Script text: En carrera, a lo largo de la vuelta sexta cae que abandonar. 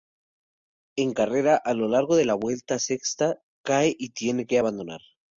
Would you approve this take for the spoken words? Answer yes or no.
no